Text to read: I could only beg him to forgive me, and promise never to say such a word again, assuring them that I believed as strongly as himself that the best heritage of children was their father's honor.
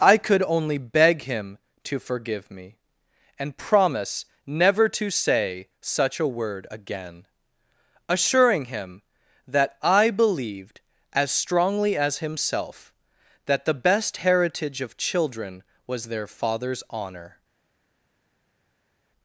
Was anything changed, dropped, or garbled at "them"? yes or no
yes